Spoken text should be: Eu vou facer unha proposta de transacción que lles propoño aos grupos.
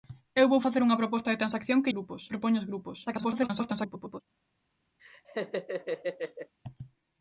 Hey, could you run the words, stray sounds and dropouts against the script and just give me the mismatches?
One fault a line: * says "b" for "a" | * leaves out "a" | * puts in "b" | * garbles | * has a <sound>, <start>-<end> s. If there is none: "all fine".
* says "grupos" for "lles"
* garbles
* has a laugh, 5.0-6.5 s